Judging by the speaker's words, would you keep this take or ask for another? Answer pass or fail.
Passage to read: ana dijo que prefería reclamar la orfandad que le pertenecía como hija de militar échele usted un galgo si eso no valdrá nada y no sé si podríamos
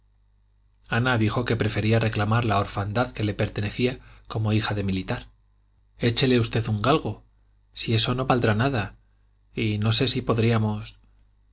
pass